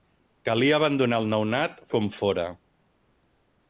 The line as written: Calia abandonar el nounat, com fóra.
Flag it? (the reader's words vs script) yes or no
no